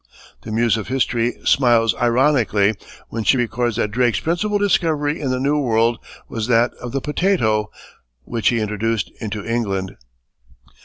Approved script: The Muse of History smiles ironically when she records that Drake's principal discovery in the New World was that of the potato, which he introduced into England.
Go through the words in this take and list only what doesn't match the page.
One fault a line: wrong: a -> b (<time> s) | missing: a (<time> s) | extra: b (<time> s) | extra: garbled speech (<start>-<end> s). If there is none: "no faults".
no faults